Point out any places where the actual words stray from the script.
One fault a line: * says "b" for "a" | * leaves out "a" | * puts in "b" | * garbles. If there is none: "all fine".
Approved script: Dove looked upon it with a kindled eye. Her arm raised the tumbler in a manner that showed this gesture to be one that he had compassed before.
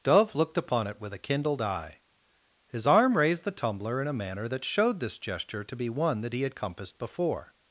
* says "His" for "Her"